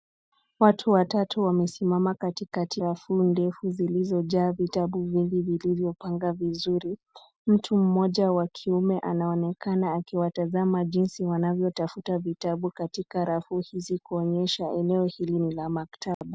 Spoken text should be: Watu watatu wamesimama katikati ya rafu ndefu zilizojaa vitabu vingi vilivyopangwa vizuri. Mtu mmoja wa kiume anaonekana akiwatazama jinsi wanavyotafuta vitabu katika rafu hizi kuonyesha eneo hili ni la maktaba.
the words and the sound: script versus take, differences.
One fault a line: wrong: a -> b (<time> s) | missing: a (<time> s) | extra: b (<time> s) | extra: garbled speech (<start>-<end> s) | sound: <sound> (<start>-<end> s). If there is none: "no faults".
missing: ya (2.8 s)
sound: dropout (16.1-16.2 s)